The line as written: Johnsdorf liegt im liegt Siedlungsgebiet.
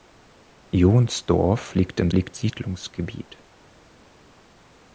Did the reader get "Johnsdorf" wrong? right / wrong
right